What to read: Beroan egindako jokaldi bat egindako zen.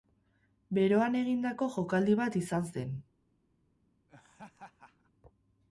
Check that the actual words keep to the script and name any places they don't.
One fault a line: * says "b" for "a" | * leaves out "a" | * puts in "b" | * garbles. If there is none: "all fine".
* says "izan" for "egindako"